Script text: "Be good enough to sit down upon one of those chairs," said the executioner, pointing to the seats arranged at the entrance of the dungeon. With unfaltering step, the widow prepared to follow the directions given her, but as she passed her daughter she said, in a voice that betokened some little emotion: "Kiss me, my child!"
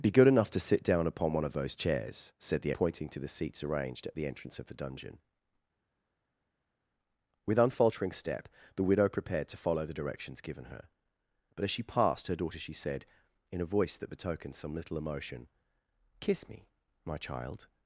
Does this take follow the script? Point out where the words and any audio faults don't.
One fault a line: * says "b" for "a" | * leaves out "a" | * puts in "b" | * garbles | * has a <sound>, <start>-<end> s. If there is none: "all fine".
* leaves out "executioner"